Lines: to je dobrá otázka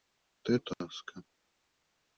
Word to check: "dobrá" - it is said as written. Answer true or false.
false